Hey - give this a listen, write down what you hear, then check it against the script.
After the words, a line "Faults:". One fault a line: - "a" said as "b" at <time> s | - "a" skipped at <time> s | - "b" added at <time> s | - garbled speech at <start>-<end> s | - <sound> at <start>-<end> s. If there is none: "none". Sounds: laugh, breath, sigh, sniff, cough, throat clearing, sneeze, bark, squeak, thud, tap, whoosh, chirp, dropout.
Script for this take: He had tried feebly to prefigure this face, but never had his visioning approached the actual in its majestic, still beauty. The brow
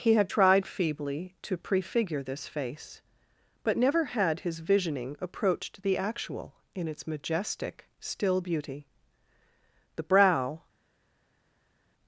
He had tried feebly to prefigure this face, but never had his visioning approached the actual in its majestic, still beauty. The brow
Faults:
none